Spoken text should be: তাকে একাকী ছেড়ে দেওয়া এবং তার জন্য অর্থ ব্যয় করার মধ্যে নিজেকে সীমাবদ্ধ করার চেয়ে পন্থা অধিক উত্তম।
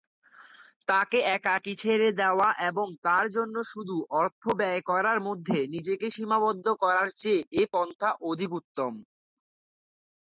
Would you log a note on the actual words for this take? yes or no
yes